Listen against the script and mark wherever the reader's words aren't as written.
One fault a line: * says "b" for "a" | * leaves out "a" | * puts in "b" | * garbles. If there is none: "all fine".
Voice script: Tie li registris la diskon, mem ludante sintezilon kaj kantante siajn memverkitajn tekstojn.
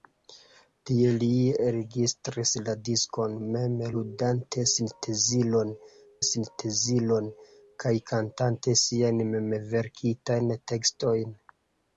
* puts in "sintezilon"